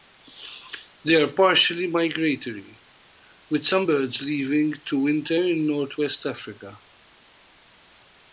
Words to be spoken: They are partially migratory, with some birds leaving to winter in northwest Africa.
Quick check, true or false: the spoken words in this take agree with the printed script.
true